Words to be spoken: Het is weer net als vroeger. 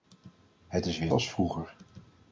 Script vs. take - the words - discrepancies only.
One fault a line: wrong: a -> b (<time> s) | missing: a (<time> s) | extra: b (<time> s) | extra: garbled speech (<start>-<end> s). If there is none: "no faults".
missing: net (1.1 s)